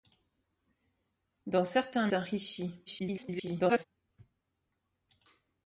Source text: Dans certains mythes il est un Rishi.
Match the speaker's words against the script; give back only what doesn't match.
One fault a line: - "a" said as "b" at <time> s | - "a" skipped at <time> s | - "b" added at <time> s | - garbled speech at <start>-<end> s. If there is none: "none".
- "mythes il est" skipped at 2.1 s
- garbled speech at 2.9-3.8 s